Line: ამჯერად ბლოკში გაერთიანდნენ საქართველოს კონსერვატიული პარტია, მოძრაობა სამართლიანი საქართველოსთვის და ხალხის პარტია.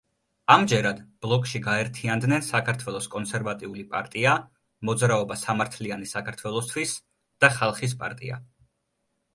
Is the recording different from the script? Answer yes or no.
no